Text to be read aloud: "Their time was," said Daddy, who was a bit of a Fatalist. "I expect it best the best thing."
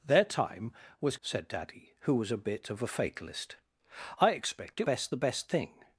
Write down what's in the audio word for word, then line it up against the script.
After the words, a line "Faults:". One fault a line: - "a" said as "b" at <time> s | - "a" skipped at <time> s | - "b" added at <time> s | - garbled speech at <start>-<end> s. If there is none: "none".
"Their time was," said Daddy, who was a bit of a Fatalist. "I expect it best the best thing."
Faults:
none